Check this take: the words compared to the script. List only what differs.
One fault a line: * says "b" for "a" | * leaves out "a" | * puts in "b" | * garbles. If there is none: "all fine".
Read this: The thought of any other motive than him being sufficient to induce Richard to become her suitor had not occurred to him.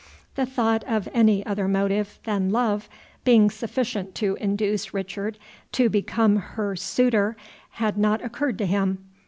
* says "love" for "him"